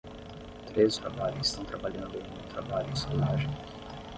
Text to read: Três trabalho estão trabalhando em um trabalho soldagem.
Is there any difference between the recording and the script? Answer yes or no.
no